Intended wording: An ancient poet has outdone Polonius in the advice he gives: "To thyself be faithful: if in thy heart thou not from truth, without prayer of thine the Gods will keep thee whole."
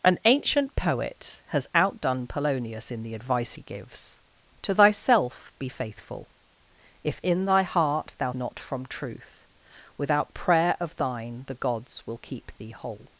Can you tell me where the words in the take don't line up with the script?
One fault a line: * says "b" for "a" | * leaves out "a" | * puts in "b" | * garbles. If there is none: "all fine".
all fine